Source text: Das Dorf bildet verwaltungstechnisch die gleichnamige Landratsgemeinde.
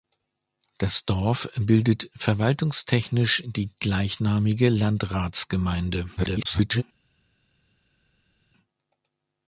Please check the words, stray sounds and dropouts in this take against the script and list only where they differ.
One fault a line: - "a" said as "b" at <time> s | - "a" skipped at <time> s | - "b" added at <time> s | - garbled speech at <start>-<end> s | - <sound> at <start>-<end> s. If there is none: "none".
- garbled speech at 6.2-6.8 s